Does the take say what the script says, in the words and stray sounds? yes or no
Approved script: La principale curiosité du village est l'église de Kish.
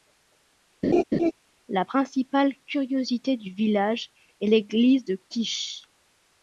no